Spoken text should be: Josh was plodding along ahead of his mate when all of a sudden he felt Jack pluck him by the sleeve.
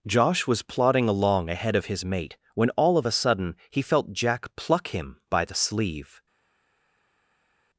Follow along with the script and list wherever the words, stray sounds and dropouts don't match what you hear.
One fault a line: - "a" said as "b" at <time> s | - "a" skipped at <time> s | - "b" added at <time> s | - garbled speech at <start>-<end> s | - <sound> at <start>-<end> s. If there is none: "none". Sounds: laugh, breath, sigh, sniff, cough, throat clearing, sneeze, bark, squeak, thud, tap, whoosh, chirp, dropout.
none